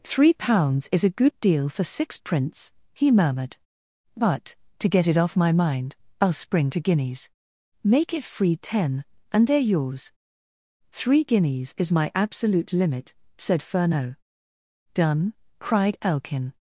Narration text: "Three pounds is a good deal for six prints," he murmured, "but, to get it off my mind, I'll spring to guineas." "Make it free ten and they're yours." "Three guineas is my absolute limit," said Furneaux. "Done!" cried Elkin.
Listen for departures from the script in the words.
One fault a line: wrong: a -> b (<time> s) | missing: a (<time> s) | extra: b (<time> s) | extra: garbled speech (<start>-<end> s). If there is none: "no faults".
no faults